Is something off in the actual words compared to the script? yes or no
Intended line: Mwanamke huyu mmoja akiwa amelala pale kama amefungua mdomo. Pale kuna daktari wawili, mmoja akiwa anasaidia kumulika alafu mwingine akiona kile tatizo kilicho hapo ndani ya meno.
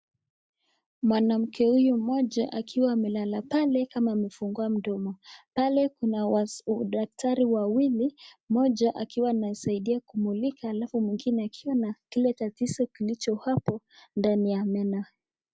no